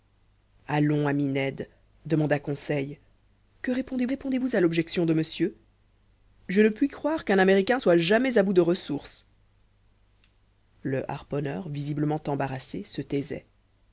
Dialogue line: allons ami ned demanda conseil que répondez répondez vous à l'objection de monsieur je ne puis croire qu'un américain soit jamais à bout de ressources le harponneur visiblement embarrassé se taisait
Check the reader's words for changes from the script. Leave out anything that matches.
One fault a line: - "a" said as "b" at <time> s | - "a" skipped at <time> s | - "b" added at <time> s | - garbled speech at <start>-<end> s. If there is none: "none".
none